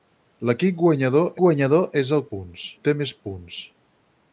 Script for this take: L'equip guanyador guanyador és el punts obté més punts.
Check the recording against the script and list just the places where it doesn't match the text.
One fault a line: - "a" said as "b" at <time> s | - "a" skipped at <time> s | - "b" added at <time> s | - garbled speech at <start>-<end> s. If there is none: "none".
none